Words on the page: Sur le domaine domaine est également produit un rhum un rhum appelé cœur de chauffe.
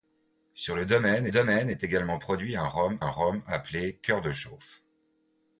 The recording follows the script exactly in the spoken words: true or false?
true